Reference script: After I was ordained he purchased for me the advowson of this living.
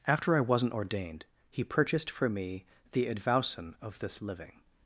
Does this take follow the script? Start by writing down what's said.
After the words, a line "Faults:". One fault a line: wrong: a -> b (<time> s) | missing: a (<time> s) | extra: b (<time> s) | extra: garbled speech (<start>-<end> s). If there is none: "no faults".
After I wasn't ordained he purchased for me the advowson of this living.
Faults:
wrong: was -> wasn't (0.4 s)